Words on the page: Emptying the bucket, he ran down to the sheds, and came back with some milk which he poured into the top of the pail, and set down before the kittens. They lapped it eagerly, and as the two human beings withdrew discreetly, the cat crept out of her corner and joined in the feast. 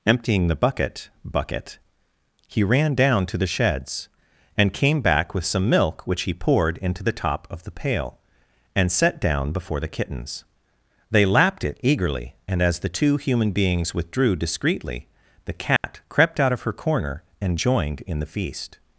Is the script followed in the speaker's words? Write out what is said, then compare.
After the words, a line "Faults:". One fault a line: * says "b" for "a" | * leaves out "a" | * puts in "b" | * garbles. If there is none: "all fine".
Emptying the bucket bucket, he ran down to the sheds, and came back with some milk which he poured into the top of the pail, and set down before the kittens. They lapped it eagerly, and as the two human beings withdrew discreetly, the cat crept out of her corner and joined in the feast.
Faults:
* puts in "bucket"